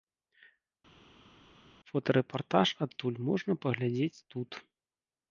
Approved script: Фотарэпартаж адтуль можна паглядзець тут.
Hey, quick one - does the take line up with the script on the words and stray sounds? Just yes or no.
yes